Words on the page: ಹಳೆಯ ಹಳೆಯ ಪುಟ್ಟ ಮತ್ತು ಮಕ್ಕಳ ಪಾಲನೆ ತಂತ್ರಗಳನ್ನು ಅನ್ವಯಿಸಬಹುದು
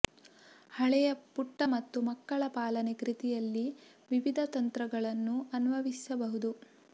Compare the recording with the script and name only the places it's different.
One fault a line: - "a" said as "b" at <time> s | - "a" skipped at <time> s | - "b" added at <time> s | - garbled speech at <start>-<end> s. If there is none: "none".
- "ಹಳೆಯ" skipped at 1.1 s
- "ಕೃತಿಯಲ್ಲಿ ವಿವಿಧ" added at 2.9 s